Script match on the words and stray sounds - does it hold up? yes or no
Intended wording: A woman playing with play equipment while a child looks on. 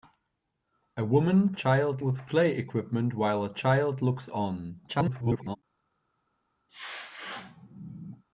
no